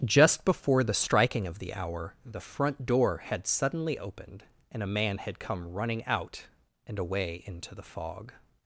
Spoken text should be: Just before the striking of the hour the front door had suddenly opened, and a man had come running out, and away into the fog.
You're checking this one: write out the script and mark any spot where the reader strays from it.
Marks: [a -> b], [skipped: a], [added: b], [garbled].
Just before the striking of the hour the front door had suddenly opened, and a man had come running out, and away into the fog.